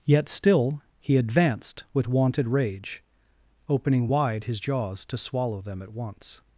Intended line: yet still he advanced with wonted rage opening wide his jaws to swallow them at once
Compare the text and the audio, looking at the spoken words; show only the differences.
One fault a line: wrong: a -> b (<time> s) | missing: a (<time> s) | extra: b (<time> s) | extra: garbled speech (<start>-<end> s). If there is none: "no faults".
no faults